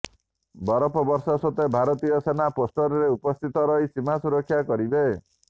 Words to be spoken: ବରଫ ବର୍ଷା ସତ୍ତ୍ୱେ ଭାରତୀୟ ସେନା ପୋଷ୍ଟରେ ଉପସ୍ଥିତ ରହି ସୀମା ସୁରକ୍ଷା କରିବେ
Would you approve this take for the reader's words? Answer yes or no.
yes